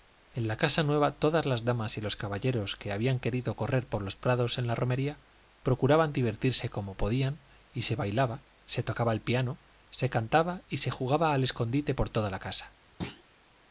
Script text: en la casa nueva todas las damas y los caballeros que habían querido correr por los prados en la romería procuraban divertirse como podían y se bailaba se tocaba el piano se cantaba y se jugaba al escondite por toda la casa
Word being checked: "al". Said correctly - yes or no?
yes